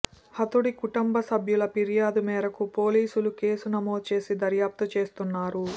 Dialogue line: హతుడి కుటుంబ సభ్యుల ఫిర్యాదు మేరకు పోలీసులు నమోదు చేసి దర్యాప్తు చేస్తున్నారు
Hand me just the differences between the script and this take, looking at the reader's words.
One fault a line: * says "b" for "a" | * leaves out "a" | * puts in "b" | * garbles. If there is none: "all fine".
* puts in "కేసు"